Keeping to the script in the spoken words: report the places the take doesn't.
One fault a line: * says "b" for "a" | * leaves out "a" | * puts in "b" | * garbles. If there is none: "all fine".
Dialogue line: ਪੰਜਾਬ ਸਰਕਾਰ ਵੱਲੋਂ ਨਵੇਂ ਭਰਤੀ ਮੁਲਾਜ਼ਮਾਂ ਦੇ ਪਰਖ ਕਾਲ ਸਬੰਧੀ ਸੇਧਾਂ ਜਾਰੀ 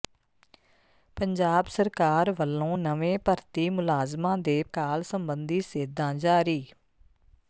* leaves out "ਪਰਖ"